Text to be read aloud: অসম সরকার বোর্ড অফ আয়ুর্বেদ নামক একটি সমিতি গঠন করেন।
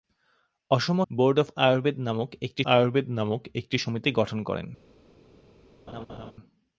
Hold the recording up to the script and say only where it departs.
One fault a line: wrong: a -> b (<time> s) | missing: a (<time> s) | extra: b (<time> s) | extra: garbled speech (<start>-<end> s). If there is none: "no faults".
missing: সরকার (1.0 s)
extra: আয়ুর্বেদ নামক একটি (2.6 s)